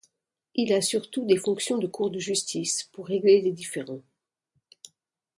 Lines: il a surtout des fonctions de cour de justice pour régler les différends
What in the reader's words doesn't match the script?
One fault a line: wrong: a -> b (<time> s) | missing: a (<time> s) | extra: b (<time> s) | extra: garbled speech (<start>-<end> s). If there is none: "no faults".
no faults